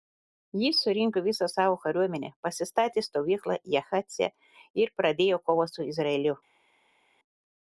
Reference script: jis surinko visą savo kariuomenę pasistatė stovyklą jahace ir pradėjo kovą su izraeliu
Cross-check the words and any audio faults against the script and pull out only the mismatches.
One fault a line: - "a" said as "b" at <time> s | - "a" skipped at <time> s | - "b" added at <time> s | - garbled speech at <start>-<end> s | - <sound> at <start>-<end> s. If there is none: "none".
none